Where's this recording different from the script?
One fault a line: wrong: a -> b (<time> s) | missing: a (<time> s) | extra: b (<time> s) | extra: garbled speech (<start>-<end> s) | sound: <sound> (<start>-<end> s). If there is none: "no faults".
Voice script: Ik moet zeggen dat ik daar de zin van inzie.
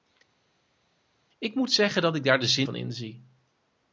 no faults